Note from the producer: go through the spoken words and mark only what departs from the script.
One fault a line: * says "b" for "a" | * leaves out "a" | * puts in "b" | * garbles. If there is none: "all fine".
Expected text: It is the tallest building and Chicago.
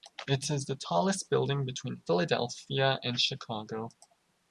* puts in "between Philadelphia"